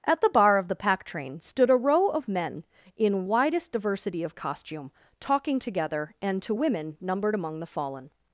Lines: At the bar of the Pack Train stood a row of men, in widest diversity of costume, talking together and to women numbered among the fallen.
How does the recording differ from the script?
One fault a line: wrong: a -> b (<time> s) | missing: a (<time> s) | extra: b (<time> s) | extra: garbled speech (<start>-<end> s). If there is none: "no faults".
no faults